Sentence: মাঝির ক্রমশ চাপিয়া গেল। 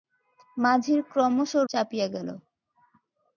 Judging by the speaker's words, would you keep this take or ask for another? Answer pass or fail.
pass